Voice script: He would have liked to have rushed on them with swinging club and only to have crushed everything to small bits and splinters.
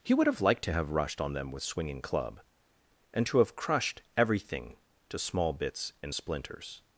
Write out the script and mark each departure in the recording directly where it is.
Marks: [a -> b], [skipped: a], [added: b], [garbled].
He would have liked to have rushed on them with swinging club and [skipped: only] to have crushed everything to small bits and splinters.